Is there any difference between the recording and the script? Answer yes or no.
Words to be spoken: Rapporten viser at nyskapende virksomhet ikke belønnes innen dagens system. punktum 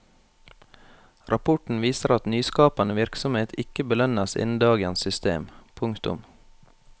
no